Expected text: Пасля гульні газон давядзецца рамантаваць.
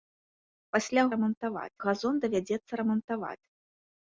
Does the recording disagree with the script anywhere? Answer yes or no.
yes